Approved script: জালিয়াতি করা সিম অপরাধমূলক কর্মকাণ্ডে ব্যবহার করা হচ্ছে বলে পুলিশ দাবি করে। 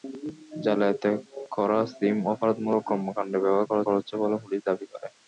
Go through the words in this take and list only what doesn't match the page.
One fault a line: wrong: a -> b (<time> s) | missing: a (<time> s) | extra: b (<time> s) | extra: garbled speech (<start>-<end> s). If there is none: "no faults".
extra: করা (3.9 s)